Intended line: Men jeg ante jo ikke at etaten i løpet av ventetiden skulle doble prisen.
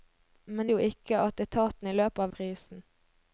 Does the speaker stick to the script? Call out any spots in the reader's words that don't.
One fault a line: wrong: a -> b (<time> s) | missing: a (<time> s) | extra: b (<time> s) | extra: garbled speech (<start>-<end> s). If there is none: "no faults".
missing: jeg ante (0.7 s)
missing: ventetiden skulle doble (2.3 s)